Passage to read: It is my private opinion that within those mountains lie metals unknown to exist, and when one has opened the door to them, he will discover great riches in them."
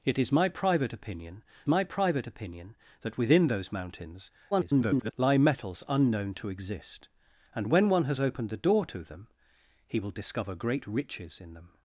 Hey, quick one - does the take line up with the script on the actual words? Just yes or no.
no